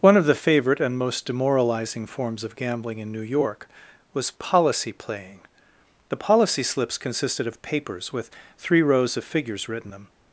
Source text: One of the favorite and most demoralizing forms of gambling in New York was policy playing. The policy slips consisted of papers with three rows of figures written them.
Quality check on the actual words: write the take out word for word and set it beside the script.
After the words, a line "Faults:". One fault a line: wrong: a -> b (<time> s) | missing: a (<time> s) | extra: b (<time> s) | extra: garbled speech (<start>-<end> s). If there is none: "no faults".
One of the favorite and most demoralizing forms of gambling in New York was policy playing. The policy slips consisted of papers with three rows of figures written them.
Faults:
no faults